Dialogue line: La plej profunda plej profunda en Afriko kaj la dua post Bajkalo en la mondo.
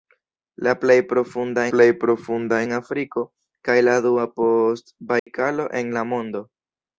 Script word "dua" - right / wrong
right